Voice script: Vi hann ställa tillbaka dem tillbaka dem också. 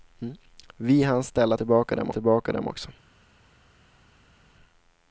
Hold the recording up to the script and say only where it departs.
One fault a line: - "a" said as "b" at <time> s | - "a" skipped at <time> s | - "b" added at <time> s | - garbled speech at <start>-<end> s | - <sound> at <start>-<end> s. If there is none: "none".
none